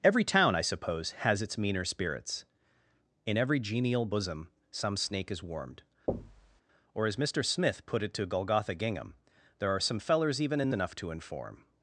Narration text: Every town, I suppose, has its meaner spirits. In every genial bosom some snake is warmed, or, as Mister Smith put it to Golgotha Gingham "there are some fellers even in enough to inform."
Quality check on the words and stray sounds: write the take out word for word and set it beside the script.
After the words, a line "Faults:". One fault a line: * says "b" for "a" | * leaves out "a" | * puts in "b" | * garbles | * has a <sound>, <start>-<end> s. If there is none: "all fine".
Every town, I suppose, has its meaner spirits. In every genial bosom some snake is warmed, or, as Mister Smith put it to Golgotha Gingham "there are some fellers even in enough to inform."
Faults:
* has a thud, 6.1-6.6 s